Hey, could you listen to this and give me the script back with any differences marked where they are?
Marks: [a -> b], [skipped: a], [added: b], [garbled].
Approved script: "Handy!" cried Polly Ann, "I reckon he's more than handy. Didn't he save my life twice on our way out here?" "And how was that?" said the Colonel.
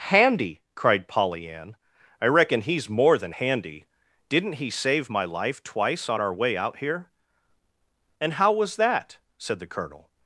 "Handy!" cried Polly Ann, "I reckon he's more than handy. Didn't he save my life twice on our way out here?" "And how was that?" said the Colonel.